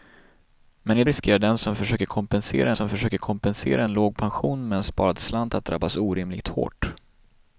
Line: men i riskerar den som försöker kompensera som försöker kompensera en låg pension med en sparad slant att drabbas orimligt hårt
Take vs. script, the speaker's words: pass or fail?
pass